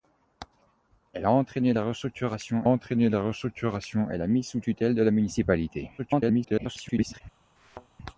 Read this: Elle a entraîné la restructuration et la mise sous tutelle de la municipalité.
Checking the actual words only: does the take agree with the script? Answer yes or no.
no